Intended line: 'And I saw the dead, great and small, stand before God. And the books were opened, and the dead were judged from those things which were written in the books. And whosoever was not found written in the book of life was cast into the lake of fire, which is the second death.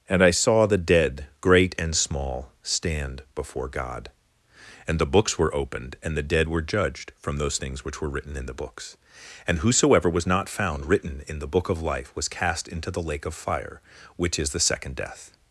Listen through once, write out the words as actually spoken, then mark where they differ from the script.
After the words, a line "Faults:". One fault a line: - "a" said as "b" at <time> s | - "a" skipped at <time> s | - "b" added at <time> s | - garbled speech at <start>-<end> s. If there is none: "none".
'And I saw the dead, great and small, stand before God. And the books were opened, and the dead were judged from those things which were written in the books. And whosoever was not found written in the book of life was cast into the lake of fire, which is the second death.
Faults:
none